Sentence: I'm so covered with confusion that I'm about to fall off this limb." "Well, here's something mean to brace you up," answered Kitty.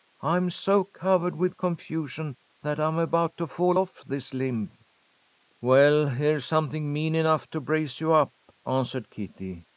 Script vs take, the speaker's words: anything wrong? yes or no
yes